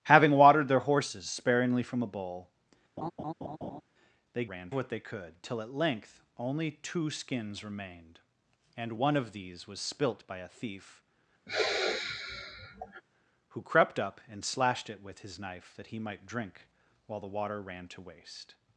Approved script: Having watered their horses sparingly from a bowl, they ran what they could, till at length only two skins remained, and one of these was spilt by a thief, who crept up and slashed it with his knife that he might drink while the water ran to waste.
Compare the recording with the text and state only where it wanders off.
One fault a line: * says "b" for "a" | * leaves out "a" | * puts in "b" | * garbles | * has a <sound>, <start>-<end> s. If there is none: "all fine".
* has a laugh, 3.0-3.8 s
* has a sigh, 11.5-13.0 s